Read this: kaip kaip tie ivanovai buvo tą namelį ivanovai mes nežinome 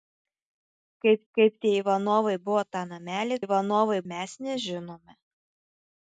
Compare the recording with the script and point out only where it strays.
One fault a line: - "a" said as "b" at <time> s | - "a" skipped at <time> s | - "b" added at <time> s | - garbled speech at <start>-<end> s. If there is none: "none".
none